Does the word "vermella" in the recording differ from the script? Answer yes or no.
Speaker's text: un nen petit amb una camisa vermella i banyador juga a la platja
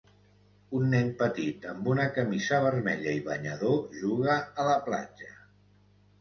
no